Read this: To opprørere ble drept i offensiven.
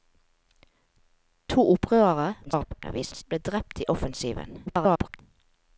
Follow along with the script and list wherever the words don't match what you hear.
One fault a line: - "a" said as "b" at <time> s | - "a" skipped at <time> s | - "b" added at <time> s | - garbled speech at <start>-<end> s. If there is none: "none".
- garbled speech at 2.4-3.2 s
- garbled speech at 4.7-5.2 s